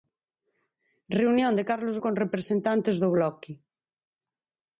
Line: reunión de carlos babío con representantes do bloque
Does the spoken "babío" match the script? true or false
false